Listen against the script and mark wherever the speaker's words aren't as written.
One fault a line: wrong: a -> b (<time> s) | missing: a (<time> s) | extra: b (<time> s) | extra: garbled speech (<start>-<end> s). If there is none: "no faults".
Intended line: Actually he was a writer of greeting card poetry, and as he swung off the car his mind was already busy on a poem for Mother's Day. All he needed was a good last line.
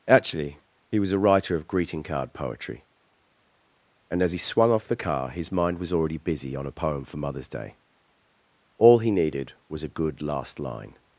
no faults